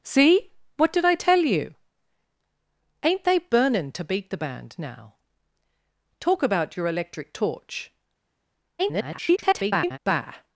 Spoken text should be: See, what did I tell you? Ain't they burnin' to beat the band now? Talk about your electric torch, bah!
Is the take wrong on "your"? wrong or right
right